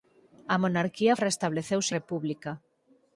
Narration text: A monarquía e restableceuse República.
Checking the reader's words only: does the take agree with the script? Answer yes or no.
yes